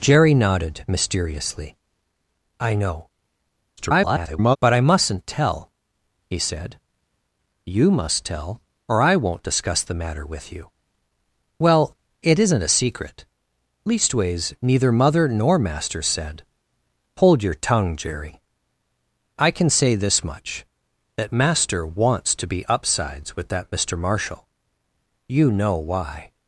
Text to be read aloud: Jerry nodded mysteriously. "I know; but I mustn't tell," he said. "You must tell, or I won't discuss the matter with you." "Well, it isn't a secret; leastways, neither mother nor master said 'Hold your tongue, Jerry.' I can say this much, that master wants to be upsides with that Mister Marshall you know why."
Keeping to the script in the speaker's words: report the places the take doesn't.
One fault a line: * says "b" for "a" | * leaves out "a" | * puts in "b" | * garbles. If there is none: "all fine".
* garbles